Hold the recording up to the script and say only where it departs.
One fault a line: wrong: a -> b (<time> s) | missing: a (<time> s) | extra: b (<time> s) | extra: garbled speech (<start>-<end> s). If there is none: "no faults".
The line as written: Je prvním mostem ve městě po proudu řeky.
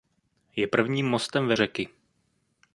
missing: městě po proudu (1.6 s)